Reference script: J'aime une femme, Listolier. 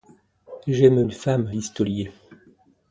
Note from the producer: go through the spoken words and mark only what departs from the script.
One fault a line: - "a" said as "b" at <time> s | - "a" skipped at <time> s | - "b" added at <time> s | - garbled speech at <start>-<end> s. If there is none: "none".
none